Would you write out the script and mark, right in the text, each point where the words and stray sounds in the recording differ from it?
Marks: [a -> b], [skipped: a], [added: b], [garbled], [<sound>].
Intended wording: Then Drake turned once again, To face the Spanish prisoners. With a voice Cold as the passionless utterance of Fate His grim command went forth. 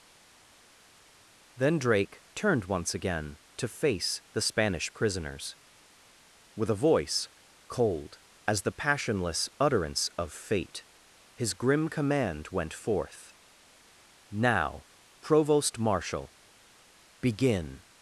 Then Drake turned once again, To face the Spanish prisoners. With a voice Cold as the passionless utterance of Fate His grim command went forth. [added: Now provost marshal Begin]